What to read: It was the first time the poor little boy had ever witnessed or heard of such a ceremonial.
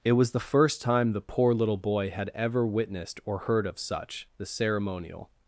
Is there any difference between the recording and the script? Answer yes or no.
yes